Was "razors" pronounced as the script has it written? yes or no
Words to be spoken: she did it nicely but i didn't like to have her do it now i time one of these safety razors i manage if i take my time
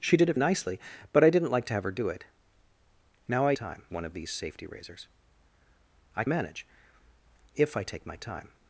yes